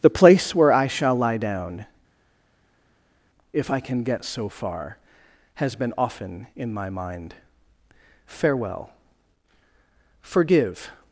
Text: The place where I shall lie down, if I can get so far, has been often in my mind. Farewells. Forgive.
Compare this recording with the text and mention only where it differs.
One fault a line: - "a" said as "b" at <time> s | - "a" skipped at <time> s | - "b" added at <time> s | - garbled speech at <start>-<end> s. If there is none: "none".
- "Farewells" said as "Farewell" at 8.3 s